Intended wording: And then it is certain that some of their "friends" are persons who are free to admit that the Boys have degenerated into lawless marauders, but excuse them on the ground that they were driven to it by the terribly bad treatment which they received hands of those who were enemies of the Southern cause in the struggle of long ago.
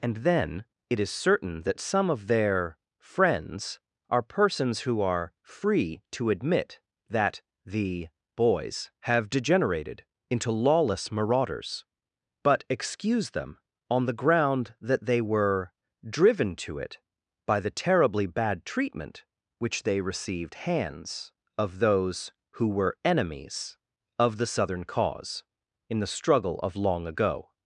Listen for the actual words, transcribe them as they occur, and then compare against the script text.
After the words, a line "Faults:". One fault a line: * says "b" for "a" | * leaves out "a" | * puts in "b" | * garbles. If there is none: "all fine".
And then it is certain that some of their "friends" are persons who are free to admit that the Boys have degenerated into lawless marauders, but excuse them on the ground that they were driven to it by the terribly bad treatment which they received hands of those who were enemies of the Southern cause in the struggle of long ago.
Faults:
all fine